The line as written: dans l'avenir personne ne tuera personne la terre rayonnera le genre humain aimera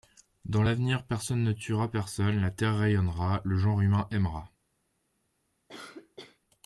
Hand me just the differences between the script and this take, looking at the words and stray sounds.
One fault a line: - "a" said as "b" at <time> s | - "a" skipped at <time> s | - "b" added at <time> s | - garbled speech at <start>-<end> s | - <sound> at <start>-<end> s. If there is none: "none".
- cough at 5.7-6.4 s